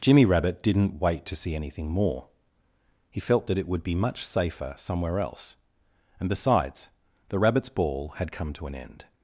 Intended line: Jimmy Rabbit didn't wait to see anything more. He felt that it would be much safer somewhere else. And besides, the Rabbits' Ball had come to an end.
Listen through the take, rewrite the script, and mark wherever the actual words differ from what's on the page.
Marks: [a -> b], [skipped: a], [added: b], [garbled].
Jimmy Rabbit didn't wait to see anything more. He felt that it would be much safer somewhere else. And besides, the Rabbits' Ball had come to an end.